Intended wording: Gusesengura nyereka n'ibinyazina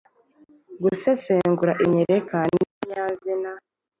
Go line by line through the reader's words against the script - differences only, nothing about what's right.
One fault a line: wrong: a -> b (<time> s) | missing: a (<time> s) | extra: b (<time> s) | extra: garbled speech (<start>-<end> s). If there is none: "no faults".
no faults